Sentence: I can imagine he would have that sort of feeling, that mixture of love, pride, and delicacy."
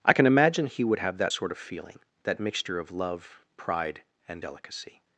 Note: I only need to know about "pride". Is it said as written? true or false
true